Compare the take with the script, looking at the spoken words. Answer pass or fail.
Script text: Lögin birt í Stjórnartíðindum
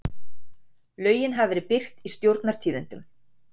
fail